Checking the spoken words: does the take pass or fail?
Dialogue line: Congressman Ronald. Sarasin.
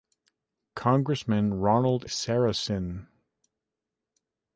pass